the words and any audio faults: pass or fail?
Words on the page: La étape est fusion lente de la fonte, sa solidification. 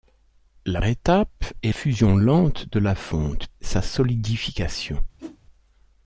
fail